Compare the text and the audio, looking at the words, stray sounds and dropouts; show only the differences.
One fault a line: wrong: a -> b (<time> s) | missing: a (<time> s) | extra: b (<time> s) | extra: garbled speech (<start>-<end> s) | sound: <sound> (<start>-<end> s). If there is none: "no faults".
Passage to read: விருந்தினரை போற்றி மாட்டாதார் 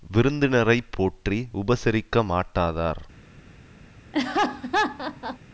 extra: உபசரிக்க (1.5 s)
sound: laugh (4.1-5.4 s)